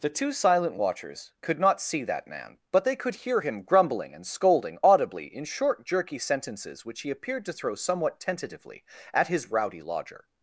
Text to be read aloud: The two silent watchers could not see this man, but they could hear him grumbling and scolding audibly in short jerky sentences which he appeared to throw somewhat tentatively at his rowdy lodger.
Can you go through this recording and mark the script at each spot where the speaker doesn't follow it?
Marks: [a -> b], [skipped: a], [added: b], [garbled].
The two silent watchers could not see [this -> that] man, but they could hear him grumbling and scolding audibly in short jerky sentences which he appeared to throw somewhat tentatively at his rowdy lodger.